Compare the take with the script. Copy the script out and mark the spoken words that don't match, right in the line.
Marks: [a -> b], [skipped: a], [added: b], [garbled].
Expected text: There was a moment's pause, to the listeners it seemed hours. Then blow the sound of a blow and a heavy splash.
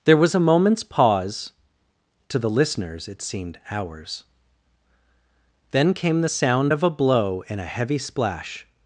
There was a moment's pause, to the listeners it seemed hours. Then [blow -> came] the sound of a blow and a heavy splash.